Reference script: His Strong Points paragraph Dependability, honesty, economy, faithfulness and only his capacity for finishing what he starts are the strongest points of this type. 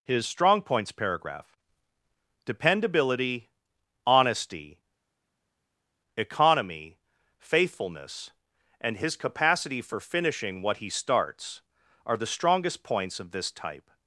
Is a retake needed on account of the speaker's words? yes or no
yes